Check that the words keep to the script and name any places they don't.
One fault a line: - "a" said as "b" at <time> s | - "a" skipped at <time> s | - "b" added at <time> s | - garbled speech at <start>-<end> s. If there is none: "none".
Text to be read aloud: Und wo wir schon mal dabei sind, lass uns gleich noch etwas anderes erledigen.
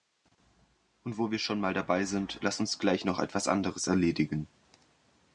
none